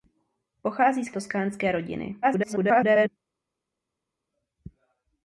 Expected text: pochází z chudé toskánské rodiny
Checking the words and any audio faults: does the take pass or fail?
fail